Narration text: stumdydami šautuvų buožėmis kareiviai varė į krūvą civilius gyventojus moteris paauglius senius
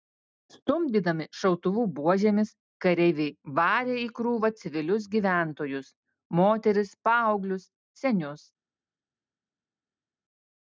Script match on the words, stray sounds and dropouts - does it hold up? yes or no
yes